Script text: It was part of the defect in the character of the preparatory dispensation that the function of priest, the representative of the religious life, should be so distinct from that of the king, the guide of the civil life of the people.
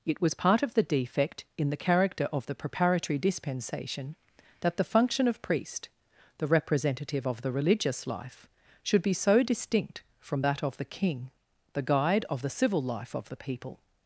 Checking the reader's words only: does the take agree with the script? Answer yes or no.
yes